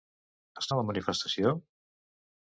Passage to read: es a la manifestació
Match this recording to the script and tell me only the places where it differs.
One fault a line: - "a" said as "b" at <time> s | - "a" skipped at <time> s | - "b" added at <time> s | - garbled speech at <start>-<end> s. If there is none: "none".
none